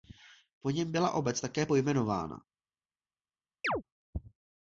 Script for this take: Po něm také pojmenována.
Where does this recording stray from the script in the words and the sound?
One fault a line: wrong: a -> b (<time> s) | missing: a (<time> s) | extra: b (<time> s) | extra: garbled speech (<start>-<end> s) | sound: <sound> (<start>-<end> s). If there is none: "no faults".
extra: byla obec (0.9 s)
sound: chirp (3.6-3.8 s)